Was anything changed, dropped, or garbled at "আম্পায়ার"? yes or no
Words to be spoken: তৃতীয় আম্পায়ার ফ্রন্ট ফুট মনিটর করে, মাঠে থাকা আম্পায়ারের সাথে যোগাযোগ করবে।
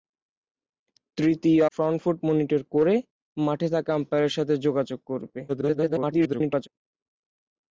yes